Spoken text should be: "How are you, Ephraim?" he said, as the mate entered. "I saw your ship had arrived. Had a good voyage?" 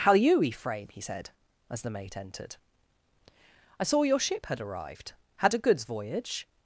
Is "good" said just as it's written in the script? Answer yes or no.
no